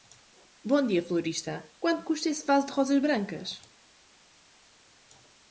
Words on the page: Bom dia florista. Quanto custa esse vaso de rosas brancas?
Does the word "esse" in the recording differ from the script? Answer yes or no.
no